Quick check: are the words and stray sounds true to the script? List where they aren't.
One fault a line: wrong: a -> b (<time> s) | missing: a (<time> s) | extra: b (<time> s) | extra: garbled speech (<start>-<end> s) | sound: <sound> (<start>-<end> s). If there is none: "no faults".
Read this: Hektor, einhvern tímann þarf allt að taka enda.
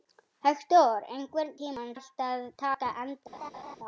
missing: þarf (1.9 s)
sound: laugh (3.3-3.8 s)